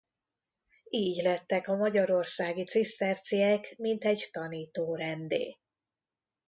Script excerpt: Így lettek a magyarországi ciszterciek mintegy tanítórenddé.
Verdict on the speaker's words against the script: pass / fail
pass